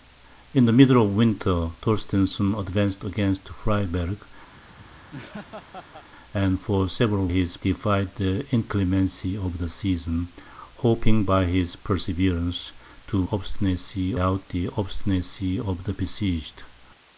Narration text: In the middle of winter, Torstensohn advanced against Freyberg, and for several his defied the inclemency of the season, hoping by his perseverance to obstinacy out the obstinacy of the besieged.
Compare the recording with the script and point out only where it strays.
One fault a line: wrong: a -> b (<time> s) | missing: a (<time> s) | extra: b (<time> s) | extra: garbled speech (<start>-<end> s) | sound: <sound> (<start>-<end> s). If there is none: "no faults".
sound: laugh (4.5-6.1 s)